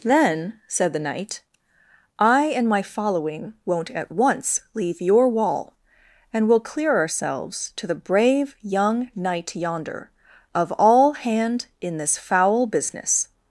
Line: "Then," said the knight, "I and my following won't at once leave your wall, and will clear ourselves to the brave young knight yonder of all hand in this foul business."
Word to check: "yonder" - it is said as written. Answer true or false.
true